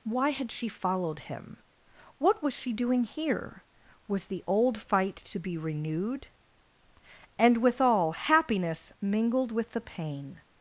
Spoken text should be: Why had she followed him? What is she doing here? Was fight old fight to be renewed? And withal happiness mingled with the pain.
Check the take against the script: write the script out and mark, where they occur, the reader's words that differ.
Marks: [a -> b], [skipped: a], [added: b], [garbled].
Why had she followed him? What [is -> was] she doing here? Was [fight -> the] old fight to be renewed? And withal happiness mingled with the pain.